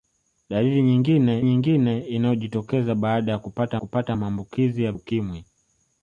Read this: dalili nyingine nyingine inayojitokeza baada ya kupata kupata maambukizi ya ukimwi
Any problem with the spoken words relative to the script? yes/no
no